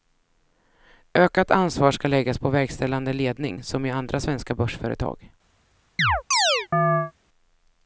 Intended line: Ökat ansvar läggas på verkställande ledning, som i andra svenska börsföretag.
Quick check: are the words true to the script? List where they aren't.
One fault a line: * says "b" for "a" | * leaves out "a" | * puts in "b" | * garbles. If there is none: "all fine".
* puts in "ska"